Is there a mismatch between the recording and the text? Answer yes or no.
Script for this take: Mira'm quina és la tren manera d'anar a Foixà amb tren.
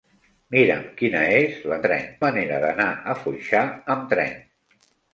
no